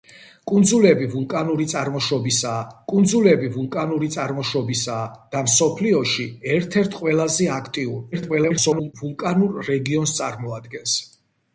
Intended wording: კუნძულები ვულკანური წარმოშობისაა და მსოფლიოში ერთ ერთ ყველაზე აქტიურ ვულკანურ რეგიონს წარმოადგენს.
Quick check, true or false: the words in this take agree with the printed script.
false